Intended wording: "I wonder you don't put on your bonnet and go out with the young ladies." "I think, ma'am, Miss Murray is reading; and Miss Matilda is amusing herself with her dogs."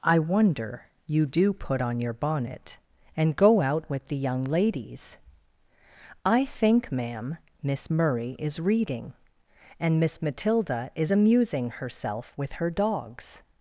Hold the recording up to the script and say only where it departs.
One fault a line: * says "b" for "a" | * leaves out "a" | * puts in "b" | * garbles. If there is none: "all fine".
* says "do" for "don't"